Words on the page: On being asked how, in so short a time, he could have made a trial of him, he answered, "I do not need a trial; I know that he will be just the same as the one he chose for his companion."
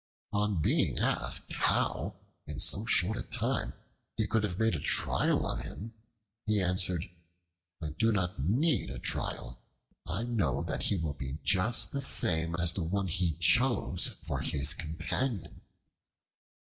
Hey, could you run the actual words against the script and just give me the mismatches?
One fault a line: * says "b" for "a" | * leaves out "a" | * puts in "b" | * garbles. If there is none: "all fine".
all fine